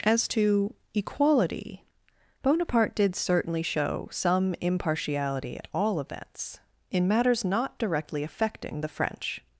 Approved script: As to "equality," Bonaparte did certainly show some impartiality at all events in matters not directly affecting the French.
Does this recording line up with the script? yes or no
yes